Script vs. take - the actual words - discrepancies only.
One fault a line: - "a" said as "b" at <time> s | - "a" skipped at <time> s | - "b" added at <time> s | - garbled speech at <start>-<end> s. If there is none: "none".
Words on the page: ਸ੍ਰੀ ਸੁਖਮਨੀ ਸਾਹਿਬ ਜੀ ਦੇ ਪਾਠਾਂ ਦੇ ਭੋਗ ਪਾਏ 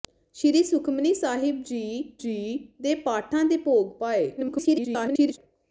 - "ਜੀ" added at 2.2 s
- garbled speech at 4.4-5.4 s